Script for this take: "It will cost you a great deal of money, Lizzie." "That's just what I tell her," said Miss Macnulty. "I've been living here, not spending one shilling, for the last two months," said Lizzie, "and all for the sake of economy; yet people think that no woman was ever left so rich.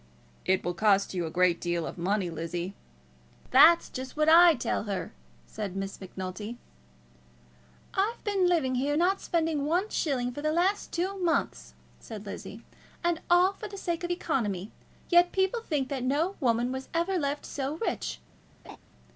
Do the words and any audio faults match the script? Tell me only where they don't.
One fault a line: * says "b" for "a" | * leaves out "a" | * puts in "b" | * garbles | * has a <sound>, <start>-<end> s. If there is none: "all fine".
* has a laugh, 18.6-18.8 s